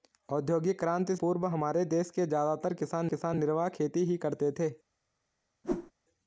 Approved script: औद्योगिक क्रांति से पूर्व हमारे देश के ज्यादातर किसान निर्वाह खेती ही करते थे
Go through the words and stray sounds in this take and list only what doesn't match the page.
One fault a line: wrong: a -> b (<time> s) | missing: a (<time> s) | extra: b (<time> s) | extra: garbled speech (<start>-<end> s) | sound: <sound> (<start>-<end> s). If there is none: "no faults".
missing: से (1.1 s)
extra: किसान (3.1 s)
sound: whoosh (5.6-5.9 s)